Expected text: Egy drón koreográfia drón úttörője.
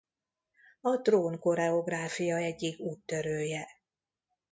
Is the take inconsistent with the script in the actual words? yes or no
yes